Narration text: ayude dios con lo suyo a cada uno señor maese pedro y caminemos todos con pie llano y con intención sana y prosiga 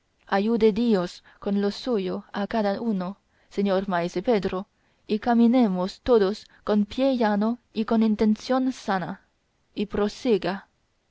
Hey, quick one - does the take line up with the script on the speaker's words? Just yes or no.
yes